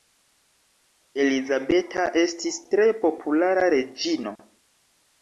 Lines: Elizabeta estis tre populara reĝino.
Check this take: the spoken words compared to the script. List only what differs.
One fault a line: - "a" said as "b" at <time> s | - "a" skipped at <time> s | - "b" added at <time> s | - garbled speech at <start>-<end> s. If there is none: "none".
none